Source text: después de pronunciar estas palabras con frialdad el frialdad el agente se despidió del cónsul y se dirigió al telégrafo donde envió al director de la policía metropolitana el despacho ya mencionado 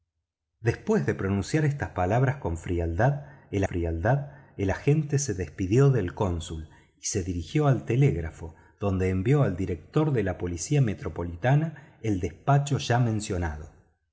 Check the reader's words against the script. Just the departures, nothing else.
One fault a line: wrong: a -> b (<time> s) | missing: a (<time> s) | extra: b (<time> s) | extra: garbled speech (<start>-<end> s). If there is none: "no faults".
no faults